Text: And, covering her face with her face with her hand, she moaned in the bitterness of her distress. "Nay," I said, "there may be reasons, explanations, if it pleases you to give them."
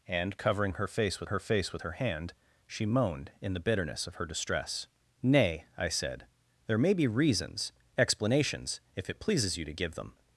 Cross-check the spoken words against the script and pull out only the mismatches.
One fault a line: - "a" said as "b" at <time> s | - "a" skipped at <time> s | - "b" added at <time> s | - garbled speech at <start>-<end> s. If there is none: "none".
none